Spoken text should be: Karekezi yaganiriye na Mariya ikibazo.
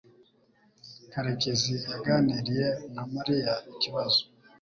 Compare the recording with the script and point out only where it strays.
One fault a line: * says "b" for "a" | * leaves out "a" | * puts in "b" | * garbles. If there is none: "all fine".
all fine